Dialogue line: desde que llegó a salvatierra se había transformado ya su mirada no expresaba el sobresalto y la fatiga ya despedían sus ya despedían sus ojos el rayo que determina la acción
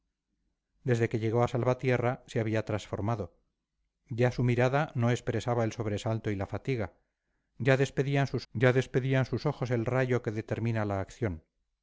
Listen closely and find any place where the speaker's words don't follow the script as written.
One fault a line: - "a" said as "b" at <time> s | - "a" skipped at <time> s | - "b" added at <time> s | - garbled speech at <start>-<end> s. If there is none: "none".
none